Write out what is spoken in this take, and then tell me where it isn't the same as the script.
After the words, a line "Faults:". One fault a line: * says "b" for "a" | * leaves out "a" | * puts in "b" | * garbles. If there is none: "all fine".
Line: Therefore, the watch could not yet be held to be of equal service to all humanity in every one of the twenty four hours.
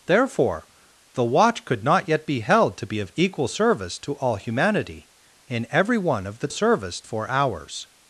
Therefore, the watch could not yet be held to be of equal service to all humanity in every one of the service four hours.
Faults:
* says "service" for "twenty"